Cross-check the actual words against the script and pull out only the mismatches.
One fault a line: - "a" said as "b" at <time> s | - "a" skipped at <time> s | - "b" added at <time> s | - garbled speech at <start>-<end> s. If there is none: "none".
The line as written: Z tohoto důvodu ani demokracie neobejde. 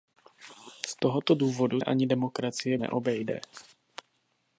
none